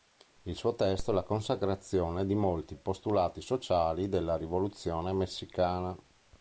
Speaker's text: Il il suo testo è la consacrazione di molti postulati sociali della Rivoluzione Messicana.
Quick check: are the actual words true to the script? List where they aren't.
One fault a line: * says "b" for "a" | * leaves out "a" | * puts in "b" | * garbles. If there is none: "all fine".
* leaves out "il"